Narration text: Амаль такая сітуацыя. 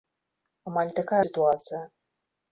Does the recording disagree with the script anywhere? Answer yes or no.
no